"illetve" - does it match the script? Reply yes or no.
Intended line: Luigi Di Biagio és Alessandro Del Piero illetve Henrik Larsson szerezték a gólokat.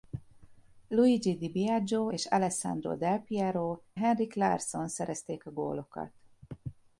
no